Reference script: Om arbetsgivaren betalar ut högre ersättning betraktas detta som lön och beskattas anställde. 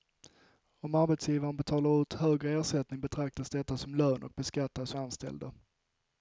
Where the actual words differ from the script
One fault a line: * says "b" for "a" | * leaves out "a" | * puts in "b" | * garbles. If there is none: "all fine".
all fine